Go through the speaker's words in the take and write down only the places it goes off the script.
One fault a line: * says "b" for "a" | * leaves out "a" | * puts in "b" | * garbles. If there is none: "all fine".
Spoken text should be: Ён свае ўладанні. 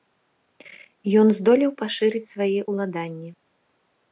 * puts in "здолеў пашырыць"